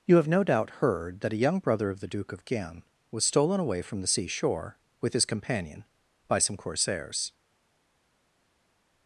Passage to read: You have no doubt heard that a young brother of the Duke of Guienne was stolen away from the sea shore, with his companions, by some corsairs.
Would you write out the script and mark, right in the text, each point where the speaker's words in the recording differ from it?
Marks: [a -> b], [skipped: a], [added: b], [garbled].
You have no doubt heard that a young brother of the Duke of Guienne was stolen away from the sea shore, with his [companions, -> companion] by some corsairs.